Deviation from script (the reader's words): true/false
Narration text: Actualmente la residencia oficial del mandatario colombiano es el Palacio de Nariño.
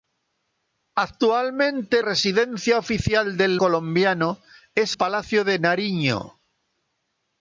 true